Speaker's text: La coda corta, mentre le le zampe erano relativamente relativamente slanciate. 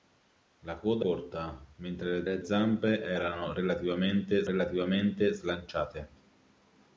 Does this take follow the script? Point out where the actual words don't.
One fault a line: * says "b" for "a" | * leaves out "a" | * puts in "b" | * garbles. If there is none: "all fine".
all fine